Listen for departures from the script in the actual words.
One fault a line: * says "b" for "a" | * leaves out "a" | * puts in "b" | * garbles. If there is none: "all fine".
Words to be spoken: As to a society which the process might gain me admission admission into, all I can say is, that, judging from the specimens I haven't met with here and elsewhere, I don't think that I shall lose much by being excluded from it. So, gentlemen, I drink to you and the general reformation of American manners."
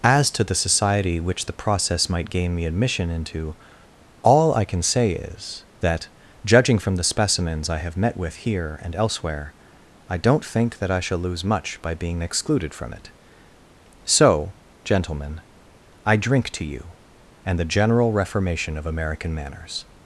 * says "the" for "a"
* leaves out "admission"
* says "have" for "haven't"